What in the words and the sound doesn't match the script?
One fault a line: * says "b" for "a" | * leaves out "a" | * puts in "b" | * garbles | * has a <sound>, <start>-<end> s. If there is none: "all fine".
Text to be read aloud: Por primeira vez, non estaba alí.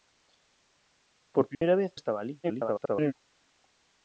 * has a dropout, 1.5-1.6 s
* leaves out "non"
* garbles